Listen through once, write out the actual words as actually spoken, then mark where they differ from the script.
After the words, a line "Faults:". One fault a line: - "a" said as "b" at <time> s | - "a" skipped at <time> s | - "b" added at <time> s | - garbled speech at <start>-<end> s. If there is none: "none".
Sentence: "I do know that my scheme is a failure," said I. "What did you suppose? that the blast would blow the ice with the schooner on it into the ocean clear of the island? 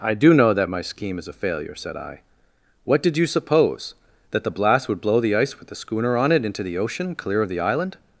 "I do know that my scheme is a failure," said I. "What did you suppose? that the blast would blow the ice with the schooner on it into the ocean clear of the island?
Faults:
none